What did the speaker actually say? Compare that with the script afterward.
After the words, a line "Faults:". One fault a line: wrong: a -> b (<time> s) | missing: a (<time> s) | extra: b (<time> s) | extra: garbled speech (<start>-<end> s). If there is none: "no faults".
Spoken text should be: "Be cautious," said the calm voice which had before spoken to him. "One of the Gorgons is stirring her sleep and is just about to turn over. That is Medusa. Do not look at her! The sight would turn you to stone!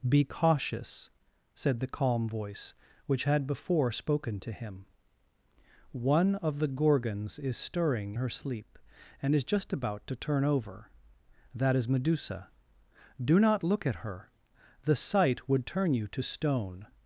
"Be cautious," said the calm voice which had before spoken to him. "One of the Gorgons is stirring her sleep and is just about to turn over. That is Medusa. Do not look at her! The sight would turn you to stone!
Faults:
no faults